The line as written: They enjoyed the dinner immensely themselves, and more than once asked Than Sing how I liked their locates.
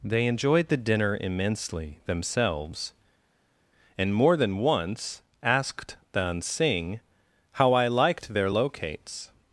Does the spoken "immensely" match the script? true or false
true